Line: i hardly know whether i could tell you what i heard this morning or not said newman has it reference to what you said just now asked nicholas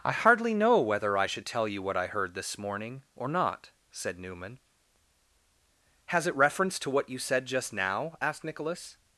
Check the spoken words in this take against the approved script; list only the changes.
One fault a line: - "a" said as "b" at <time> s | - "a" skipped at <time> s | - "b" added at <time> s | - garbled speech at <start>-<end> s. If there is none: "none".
- "could" said as "should" at 1.3 s